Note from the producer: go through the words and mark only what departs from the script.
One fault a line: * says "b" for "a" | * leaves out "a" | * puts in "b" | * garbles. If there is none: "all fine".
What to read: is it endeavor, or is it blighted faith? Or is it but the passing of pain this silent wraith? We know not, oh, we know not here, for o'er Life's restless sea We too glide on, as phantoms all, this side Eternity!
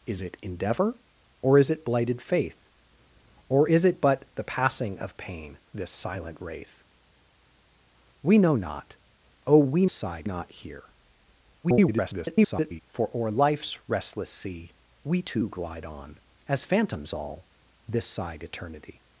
* says "side" for "know"
* garbles